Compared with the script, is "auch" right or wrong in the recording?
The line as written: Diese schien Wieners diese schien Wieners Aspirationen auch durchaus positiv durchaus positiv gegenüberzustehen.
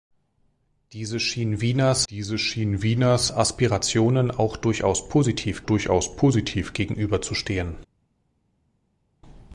right